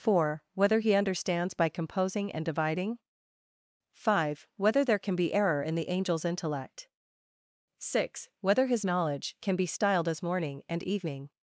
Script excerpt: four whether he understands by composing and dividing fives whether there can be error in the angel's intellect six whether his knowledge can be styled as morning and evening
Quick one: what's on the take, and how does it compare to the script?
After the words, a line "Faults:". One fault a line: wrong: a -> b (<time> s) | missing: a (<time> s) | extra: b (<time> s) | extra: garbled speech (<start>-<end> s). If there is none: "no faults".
four whether he understands by composing and dividing five whether there can be error in the angel's intellect six whether his knowledge can be styled as morning and evening
Faults:
wrong: fives -> five (3.9 s)